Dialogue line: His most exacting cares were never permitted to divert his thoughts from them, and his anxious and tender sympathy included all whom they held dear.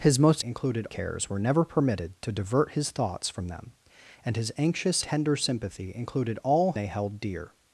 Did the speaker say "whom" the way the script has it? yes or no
no